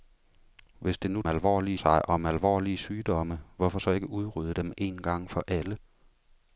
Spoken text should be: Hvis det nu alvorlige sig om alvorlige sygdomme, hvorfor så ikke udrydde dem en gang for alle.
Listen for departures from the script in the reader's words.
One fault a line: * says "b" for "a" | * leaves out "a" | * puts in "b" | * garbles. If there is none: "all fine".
all fine